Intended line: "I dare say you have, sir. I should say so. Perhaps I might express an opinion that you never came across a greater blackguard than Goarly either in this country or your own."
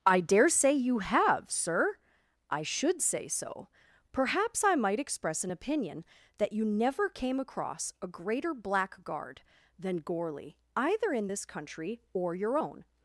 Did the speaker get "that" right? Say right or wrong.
right